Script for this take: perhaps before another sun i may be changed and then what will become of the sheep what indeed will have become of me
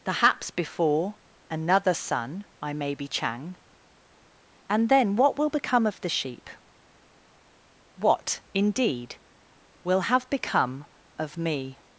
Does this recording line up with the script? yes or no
no